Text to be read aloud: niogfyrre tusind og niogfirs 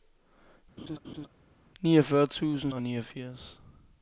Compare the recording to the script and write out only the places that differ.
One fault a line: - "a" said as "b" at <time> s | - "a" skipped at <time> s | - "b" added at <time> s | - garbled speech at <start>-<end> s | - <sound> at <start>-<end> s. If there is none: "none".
- laugh at 0.8-1.3 s